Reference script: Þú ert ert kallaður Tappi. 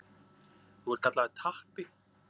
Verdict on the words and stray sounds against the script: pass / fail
fail